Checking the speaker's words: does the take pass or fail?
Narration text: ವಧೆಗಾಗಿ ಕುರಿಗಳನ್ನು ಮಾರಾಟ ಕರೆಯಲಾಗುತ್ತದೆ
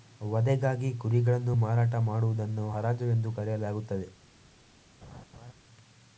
fail